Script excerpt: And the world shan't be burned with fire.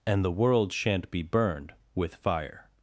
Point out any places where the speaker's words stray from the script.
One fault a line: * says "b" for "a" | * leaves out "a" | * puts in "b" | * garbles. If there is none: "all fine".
all fine